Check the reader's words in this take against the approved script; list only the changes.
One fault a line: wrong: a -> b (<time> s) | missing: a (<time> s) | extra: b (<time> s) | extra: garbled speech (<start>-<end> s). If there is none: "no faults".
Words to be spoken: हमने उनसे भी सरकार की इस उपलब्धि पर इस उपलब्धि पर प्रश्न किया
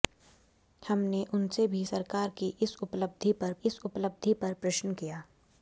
no faults